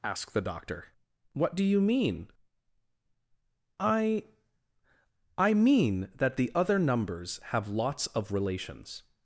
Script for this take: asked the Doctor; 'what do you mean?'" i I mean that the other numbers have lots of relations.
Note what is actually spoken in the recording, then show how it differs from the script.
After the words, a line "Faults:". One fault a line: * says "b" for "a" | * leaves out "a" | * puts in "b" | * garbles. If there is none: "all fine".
asked the Doctor; 'what do you mean?'" i I mean that the other numbers have lots of relations.
Faults:
all fine